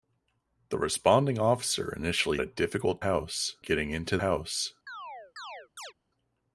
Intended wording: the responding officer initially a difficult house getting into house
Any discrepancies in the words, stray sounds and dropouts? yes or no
yes